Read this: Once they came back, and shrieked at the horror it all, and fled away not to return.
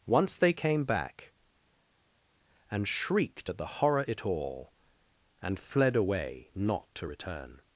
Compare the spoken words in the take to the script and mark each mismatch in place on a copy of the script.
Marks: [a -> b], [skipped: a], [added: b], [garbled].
Once they came back, and shrieked at the horror it all, and fled away not to return.